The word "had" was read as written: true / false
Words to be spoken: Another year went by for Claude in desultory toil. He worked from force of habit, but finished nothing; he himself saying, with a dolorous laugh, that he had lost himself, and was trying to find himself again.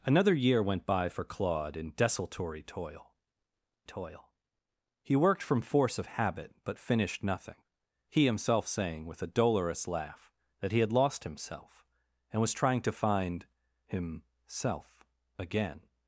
true